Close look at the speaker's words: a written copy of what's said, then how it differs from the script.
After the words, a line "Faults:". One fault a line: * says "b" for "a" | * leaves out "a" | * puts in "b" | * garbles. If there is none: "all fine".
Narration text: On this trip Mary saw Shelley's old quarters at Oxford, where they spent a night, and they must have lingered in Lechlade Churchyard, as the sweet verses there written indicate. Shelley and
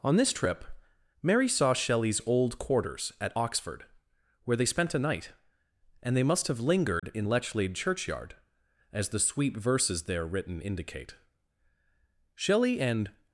On this trip Mary saw Shelley's old quarters at Oxford, where they spent a night, and they must have lingered in Lechlade Churchyard, as the sweet verses there written indicate. Shelley and
Faults:
all fine